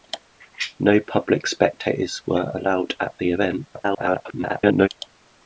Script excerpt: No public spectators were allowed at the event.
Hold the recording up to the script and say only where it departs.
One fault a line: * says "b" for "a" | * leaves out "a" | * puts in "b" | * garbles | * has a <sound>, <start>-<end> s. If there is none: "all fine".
* garbles